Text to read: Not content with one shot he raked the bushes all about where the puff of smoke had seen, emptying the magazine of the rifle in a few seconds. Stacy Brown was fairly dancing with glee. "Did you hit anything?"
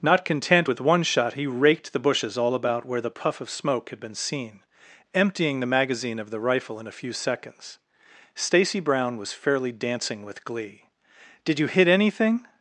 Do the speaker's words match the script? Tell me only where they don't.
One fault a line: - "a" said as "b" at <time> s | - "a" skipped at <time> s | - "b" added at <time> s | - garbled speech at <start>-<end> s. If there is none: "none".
- "been" added at 4.0 s